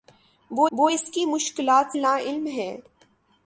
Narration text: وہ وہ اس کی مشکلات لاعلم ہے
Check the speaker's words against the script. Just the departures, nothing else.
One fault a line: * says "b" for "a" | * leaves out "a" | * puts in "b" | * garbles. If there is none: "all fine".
all fine